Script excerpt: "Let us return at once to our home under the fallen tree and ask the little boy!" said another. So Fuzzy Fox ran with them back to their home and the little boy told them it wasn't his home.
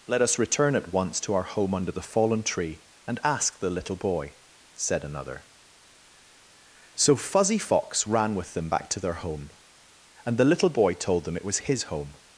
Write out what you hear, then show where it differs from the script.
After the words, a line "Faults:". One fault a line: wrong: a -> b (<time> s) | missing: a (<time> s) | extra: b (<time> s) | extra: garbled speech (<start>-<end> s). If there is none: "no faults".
"Let us return at once to our home under the fallen tree and ask the little boy!" said another. So Fuzzy Fox ran with them back to their home and the little boy told them it was his home.
Faults:
wrong: wasn't -> was (11.4 s)